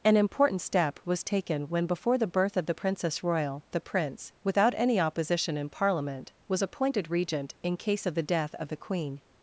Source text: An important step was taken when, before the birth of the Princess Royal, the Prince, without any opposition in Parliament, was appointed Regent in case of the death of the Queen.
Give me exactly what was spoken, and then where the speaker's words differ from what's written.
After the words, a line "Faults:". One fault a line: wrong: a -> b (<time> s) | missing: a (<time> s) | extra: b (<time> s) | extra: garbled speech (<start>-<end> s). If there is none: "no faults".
An important step was taken when, before the birth of the Princess Royal, the Prince, without any opposition in Parliament, was appointed Regent in case of the death of the Queen.
Faults:
no faults